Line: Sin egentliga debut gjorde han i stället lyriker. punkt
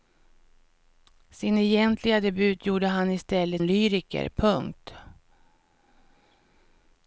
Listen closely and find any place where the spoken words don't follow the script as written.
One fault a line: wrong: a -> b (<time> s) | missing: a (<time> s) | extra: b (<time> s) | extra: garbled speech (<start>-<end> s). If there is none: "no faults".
no faults